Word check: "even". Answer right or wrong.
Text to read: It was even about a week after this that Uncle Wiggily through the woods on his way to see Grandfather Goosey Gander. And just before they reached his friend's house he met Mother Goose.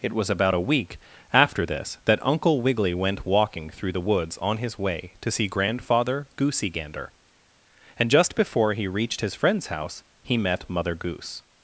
wrong